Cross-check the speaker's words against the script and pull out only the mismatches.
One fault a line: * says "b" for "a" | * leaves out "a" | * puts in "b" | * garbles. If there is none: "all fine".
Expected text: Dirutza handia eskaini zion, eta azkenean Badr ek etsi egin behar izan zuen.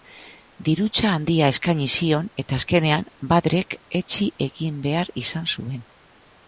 all fine